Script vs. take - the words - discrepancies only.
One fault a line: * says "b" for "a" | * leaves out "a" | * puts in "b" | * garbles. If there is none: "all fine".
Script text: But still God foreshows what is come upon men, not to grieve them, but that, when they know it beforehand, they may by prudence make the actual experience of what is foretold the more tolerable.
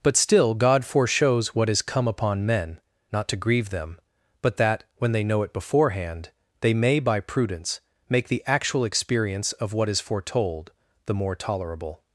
all fine